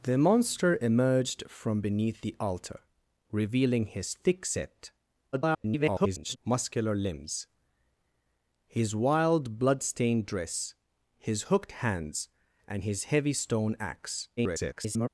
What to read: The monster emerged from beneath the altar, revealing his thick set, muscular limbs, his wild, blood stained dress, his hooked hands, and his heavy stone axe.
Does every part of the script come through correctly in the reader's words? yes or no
no